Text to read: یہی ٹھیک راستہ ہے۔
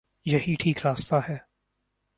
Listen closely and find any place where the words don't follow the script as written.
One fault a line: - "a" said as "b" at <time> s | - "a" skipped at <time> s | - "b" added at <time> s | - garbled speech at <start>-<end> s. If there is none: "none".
none